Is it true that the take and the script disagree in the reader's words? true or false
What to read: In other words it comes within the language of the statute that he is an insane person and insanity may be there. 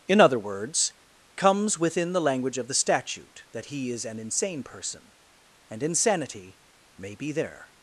true